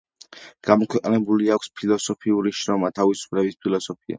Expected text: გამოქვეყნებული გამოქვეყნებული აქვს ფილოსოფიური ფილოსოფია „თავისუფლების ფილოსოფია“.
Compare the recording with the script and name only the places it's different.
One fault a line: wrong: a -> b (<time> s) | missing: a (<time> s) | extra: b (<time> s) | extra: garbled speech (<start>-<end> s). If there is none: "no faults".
missing: გამოქვეყნებული (1.5 s)
wrong: ფილოსოფია -> შრომა (2.6 s)